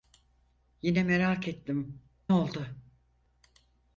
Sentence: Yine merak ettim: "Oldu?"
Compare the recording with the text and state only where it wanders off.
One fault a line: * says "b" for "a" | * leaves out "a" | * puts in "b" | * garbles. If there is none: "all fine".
all fine